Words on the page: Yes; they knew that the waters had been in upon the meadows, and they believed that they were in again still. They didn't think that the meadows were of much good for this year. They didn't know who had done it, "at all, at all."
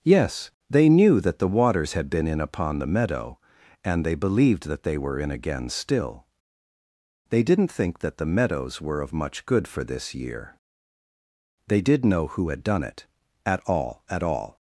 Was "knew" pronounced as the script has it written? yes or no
yes